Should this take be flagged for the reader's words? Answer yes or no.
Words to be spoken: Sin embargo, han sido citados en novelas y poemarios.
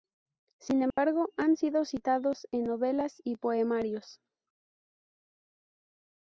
no